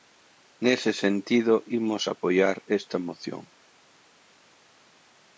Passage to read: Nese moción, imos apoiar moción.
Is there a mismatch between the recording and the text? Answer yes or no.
yes